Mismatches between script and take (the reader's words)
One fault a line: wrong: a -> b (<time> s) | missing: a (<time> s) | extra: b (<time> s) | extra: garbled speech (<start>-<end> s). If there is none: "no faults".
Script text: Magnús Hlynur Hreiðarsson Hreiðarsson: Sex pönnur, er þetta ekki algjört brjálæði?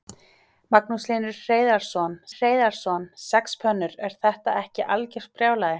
no faults